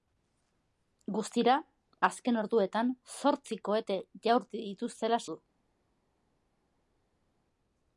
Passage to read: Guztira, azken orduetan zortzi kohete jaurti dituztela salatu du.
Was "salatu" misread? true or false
true